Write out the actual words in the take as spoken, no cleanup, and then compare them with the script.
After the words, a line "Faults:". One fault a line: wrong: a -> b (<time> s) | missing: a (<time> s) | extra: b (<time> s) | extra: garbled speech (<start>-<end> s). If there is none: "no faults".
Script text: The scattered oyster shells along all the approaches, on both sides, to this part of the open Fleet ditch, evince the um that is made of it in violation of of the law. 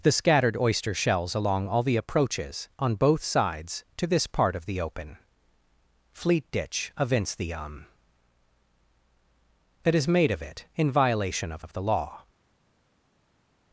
The scattered oyster shells along all the approaches, on both sides, to this part of the open Fleet ditch, evince the um that is made of it in violation of of the law.
Faults:
no faults